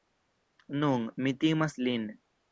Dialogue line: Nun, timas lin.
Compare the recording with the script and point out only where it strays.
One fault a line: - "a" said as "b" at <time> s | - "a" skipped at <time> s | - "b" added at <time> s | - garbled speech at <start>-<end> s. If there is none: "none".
- "mi" added at 1.2 s